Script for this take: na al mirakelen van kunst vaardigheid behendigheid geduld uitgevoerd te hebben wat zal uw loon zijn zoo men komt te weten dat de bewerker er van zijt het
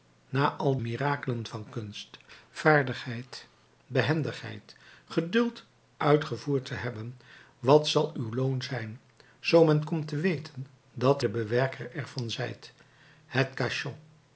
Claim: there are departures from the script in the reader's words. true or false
false